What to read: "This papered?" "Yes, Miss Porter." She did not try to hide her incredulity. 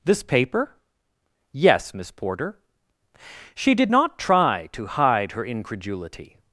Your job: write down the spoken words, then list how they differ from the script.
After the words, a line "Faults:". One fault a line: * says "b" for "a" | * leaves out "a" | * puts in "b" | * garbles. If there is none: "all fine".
"This paper?" "Yes, Miss Porter." She did not try to hide her incredulity.
Faults:
* says "paper" for "papered"